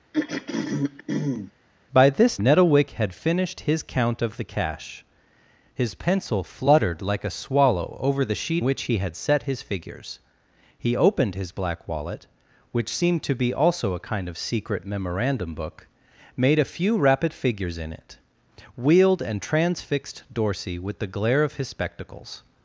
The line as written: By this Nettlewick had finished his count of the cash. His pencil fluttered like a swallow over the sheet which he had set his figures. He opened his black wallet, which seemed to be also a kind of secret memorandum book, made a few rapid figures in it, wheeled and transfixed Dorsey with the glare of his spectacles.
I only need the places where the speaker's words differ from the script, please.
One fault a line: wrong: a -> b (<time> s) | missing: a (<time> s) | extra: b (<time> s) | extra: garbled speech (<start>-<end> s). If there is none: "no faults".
no faults